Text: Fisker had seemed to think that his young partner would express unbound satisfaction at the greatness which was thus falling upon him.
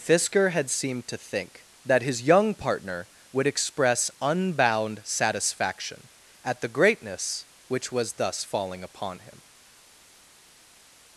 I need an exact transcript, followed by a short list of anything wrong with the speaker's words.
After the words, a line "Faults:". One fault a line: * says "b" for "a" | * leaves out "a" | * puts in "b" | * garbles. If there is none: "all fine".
Fisker had seemed to think that his young partner would express unbound satisfaction at the greatness which was thus falling upon him.
Faults:
all fine